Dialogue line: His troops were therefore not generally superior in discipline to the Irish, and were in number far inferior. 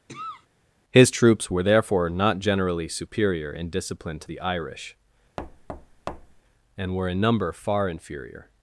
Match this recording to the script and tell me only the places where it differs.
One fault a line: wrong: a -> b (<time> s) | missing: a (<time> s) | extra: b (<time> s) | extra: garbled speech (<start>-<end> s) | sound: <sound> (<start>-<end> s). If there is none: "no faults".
sound: cough (0.1-0.5 s)
sound: thud (5.4-6.4 s)